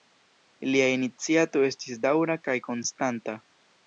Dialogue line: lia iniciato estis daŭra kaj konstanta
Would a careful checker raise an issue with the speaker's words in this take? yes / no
no